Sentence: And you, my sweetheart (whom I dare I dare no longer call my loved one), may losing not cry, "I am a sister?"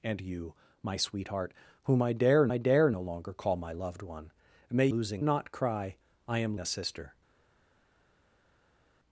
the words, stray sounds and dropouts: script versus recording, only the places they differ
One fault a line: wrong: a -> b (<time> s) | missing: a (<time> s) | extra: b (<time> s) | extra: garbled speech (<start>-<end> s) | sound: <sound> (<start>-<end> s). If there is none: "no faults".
no faults